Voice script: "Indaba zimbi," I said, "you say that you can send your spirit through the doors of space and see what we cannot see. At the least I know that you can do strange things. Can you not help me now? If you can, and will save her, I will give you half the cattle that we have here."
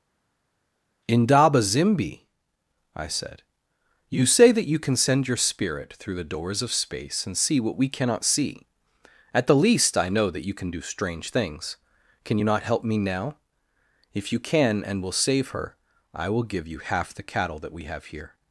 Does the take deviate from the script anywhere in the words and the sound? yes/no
no